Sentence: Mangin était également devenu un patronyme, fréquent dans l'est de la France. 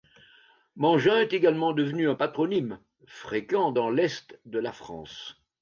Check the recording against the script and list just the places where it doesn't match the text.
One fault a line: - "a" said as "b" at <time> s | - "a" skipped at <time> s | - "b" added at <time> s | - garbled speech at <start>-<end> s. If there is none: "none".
- "était" said as "est" at 1.2 s